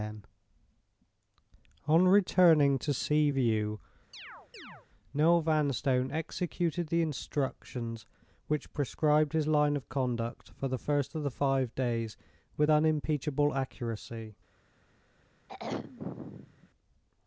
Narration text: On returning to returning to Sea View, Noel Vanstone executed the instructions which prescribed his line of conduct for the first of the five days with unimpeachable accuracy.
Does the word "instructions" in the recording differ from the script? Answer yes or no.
no